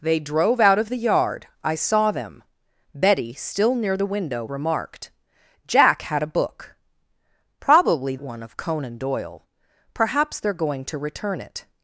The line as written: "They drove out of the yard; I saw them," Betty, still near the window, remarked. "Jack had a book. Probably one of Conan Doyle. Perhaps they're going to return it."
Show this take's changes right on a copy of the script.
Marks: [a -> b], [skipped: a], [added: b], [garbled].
"They drove out of the yard; I saw them," Betty, still near the window, remarked. "Jack had a book. Probably one of Conan Doyle. Perhaps they're going to return it."